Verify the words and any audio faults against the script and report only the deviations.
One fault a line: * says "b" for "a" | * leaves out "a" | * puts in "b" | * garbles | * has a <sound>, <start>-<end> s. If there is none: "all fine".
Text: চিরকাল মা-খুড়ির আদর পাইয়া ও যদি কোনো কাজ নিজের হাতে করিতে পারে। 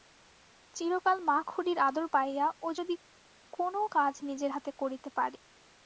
all fine